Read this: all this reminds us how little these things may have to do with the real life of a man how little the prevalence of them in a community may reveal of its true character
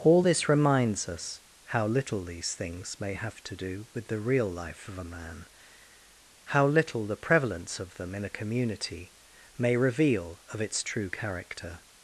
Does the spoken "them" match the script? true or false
true